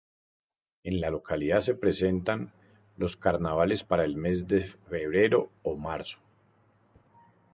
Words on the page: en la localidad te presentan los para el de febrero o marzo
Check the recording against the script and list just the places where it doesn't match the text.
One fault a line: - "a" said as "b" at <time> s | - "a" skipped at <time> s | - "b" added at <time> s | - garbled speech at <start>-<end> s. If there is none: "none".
- "te" said as "se" at 1.6 s
- "carnavales" added at 3.1 s
- "mes" added at 4.2 s